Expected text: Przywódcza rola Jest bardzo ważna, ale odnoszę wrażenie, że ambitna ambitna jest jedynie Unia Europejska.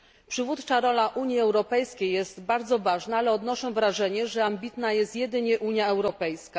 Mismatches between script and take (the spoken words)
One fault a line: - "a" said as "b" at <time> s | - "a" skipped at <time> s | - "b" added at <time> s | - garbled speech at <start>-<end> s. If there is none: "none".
- "Unii Europejskiej" added at 1.1 s
- "ambitna" skipped at 4.9 s